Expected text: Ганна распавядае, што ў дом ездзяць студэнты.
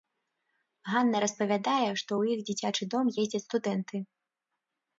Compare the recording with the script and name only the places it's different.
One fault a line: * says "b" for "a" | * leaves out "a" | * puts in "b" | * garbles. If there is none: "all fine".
* puts in "іх дзіцячы"